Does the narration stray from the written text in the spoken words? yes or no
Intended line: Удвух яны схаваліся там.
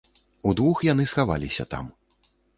no